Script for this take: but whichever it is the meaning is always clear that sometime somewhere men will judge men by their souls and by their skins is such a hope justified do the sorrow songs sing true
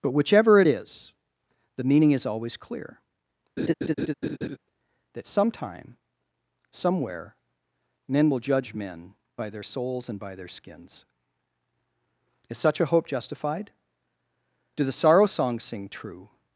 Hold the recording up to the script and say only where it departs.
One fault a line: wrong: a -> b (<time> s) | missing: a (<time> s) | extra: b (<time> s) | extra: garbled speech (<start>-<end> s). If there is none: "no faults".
no faults